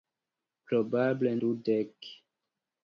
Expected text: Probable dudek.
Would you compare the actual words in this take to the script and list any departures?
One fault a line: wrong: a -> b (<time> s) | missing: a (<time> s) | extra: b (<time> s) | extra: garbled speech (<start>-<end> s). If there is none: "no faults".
no faults